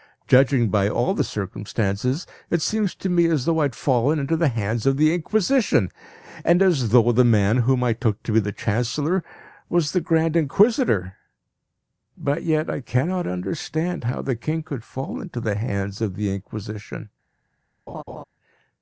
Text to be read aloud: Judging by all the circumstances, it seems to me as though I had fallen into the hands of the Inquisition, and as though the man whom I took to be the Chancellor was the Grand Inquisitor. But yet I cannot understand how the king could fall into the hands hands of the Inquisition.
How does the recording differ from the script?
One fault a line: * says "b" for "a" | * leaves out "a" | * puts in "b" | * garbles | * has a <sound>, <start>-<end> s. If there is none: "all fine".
* leaves out "hands"
* has a laugh, 17.9-18.2 s